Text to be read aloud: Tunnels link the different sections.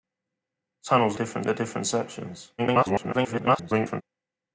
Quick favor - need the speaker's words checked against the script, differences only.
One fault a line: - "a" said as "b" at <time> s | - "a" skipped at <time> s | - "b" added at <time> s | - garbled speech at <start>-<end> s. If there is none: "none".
- "link" said as "different" at 1.1 s
- garbled speech at 2.6-4.0 s